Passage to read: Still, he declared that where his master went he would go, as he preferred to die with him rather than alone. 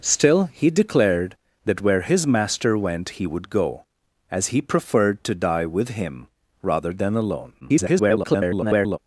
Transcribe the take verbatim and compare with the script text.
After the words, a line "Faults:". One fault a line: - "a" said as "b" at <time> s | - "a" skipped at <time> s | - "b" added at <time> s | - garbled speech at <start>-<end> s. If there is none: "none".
Still, he declared that where his master went he would go, as he preferred to die with him rather than alone. [garbled]
Faults:
- garbled speech at 7.6-9.0 s